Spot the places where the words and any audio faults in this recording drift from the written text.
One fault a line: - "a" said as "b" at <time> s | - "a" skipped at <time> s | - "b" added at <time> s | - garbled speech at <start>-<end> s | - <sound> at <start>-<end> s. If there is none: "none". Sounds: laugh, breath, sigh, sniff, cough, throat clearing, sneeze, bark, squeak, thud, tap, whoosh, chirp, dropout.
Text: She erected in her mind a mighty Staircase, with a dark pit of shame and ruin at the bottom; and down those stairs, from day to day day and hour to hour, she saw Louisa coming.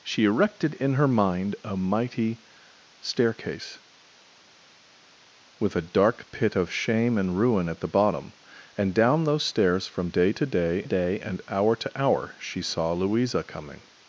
none